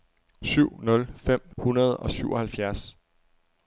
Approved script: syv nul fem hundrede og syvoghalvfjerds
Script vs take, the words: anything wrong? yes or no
no